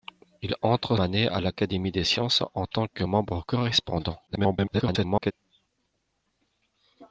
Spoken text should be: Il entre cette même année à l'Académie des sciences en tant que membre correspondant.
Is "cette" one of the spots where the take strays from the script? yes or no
yes